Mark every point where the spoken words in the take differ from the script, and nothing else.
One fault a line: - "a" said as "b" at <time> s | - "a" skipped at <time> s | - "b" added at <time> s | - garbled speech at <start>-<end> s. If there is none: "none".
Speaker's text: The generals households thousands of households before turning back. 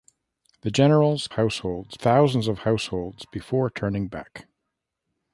none